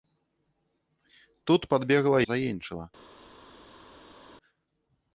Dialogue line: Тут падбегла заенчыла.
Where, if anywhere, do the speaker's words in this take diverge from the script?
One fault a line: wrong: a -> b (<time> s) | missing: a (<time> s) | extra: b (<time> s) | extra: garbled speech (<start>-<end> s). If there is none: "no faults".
no faults